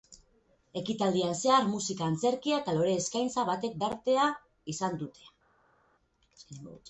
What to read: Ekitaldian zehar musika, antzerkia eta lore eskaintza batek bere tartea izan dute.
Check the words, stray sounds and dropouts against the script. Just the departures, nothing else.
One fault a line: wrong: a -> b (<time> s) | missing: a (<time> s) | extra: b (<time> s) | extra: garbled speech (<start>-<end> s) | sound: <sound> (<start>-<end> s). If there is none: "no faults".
missing: bere (3.8 s)